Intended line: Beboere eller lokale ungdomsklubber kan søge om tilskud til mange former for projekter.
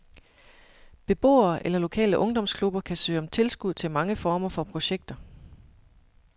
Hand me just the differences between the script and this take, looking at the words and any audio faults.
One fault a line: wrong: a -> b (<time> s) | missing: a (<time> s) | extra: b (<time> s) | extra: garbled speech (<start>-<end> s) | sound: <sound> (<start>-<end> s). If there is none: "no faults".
no faults